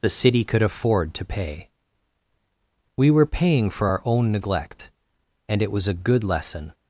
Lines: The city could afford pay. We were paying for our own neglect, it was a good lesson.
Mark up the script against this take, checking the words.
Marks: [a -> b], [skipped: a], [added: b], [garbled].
The city could afford [added: to] pay. We were paying for our own neglect, [added: and] it was a good lesson.